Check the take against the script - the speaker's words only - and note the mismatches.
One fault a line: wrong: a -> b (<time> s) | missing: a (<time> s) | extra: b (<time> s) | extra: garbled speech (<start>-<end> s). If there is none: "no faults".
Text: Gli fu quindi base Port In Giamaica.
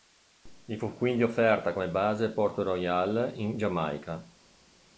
extra: offerta come (1.2 s)
extra: Royal (2.6 s)